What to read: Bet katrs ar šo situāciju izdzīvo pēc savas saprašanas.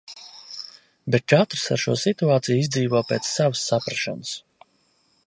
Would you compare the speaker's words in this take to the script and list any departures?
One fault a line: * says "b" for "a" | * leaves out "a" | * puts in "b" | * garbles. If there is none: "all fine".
all fine